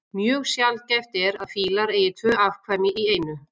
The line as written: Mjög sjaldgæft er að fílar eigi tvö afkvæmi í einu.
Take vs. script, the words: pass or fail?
pass